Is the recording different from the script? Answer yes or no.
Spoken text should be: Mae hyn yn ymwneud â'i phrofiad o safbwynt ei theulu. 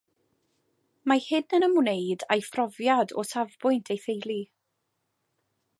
no